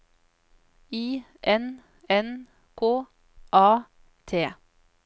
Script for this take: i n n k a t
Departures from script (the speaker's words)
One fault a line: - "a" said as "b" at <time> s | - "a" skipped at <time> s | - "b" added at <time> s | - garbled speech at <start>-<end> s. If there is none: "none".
none